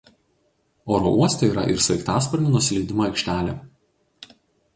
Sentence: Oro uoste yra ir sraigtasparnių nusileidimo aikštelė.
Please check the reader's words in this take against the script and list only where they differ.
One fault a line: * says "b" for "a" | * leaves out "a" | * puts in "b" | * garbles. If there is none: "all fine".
all fine